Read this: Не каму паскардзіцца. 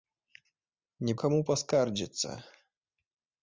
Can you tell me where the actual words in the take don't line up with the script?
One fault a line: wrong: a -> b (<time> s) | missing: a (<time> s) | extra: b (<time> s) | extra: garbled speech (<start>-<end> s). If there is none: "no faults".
no faults